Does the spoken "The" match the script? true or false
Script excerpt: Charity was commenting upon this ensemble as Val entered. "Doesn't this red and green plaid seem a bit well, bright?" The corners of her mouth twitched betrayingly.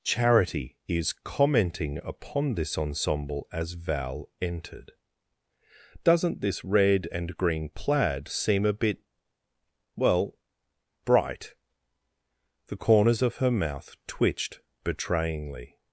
true